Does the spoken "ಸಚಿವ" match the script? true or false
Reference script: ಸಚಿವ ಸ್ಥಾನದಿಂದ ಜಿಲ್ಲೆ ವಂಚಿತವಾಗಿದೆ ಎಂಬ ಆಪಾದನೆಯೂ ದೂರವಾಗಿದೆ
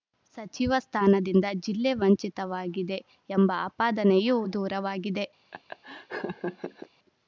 true